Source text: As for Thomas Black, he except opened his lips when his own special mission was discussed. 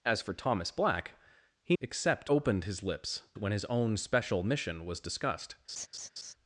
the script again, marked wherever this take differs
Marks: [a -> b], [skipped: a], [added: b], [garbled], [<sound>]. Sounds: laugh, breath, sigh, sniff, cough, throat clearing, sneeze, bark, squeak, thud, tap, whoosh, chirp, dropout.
As for Thomas Black, he except opened his lips when his own special mission was discussed. [laugh]